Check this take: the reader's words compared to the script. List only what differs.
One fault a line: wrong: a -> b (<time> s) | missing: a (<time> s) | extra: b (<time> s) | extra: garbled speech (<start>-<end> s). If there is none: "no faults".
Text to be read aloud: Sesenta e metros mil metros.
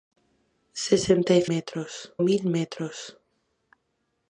no faults